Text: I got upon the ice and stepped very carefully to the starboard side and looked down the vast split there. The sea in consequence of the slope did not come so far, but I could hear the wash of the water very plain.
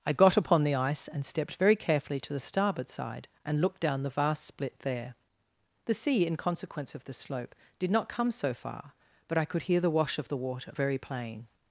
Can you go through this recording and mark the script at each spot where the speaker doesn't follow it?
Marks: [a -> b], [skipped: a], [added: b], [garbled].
I got upon the ice and stepped very carefully to the starboard side and looked down the vast split there. The sea in consequence of the slope did not come so far, but I could hear the wash of the water very plain.